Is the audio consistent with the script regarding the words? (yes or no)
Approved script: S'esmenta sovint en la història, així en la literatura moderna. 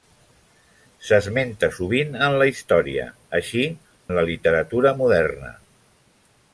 yes